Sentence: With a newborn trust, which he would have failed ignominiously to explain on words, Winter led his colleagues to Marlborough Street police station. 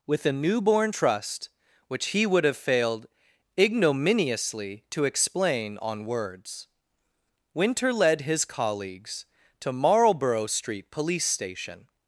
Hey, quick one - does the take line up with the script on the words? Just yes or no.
yes